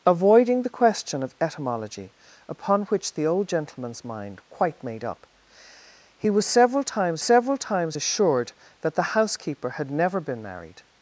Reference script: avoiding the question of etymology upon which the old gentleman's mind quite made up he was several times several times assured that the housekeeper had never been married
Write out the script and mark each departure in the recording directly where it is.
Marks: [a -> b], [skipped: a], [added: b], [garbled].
avoiding the question of etymology upon which the old gentleman's mind quite made up he was several times several times assured that the housekeeper had never been married